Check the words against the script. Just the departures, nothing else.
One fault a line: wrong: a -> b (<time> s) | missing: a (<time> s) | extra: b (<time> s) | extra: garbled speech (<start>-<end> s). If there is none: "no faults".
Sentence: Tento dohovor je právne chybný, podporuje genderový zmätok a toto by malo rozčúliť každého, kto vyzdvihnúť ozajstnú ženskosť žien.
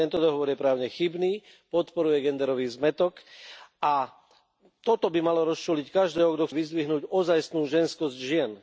no faults